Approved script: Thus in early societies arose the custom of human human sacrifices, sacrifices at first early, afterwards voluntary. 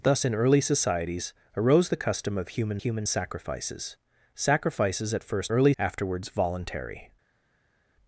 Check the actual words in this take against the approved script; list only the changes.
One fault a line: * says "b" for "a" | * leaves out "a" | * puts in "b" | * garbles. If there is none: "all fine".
all fine